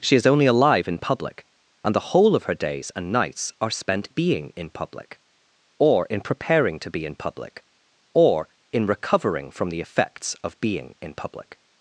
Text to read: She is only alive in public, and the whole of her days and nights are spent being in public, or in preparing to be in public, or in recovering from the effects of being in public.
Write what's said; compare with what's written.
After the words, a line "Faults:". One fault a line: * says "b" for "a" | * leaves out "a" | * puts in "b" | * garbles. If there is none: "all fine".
She is only alive in public, and the whole of her days and nights are spent being in public, or in preparing to be in public, or in recovering from the effects of being in public.
Faults:
all fine